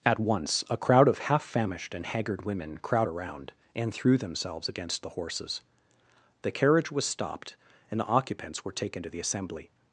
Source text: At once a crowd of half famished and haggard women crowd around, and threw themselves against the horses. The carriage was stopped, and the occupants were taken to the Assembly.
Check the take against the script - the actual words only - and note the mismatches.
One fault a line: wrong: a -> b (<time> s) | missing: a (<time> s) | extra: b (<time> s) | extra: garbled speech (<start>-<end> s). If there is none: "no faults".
no faults